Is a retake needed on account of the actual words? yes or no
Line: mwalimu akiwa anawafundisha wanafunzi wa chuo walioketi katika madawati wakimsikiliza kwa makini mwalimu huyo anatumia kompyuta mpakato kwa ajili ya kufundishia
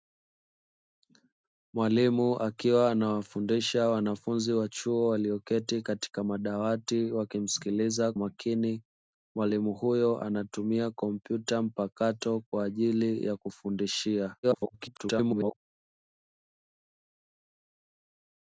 yes